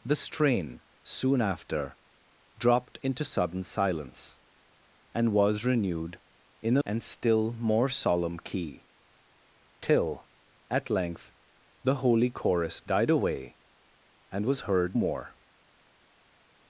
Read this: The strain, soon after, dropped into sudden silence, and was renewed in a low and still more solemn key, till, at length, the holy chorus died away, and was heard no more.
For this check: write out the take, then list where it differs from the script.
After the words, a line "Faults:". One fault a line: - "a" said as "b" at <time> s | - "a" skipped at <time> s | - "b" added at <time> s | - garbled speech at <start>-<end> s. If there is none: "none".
The strain, soon after, dropped into sudden silence, and was renewed in a and still more solemn key, till, at length, the holy chorus died away, and was heard more.
Faults:
- "low" skipped at 6.8 s
- "no" skipped at 15.0 s